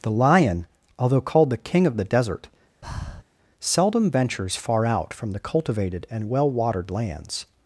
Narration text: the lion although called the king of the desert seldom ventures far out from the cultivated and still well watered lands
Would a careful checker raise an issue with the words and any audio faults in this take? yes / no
yes